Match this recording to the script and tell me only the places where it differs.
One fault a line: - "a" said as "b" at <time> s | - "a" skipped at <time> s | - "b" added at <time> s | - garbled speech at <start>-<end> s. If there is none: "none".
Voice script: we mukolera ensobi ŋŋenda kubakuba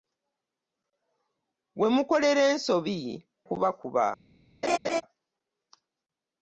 - "ŋŋenda" skipped at 3.0 s